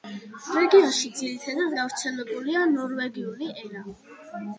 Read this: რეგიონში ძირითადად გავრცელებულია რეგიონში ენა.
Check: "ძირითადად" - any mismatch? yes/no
no